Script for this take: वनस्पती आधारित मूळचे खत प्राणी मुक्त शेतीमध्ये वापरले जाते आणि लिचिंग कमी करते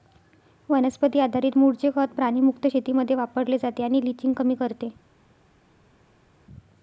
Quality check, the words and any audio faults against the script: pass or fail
pass